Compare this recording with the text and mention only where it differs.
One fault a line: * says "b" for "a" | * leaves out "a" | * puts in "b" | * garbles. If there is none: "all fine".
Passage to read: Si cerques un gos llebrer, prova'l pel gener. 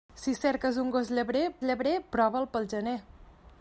* puts in "llebrer"